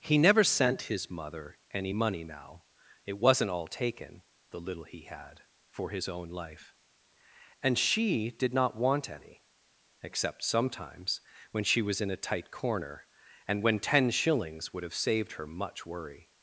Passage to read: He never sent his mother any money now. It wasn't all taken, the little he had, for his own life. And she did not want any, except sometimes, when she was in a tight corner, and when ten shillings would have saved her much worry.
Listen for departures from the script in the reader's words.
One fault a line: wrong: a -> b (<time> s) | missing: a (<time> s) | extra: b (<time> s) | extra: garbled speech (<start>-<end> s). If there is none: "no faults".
no faults